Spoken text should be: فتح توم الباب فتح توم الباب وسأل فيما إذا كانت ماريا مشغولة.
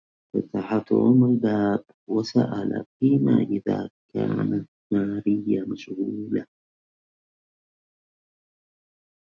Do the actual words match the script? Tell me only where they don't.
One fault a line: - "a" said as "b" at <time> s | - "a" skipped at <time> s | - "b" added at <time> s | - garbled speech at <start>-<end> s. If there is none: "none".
- "فتح توم الباب" skipped at 1.8 s